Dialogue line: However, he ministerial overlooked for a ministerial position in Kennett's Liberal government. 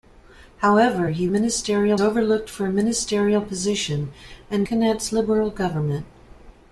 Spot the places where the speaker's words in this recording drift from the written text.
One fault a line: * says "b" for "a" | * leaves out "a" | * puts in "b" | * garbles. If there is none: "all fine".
all fine